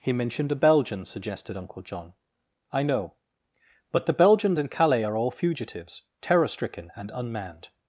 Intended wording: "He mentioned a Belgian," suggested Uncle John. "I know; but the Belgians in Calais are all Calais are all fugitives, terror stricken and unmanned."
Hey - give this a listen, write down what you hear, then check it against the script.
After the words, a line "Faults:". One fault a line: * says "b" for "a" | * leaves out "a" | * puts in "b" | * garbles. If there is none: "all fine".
"He mentioned a Belgian," suggested Uncle John. "I know; but the Belgians in Calais are all fugitives, terror stricken and unmanned."
Faults:
* leaves out "Calais are all"